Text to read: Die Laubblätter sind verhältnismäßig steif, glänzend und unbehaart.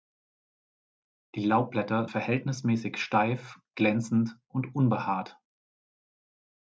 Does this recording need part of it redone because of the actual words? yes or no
yes